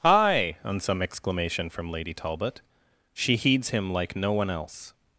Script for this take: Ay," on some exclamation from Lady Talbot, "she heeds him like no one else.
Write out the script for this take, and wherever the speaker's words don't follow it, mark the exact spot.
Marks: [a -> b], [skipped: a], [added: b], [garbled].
[Ay," -> Hi] on some exclamation from Lady Talbot, "she heeds him like no one else.